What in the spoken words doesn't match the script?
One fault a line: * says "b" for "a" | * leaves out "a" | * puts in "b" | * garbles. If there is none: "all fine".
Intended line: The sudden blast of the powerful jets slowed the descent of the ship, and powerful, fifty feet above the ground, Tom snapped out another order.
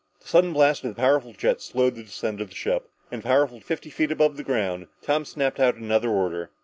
all fine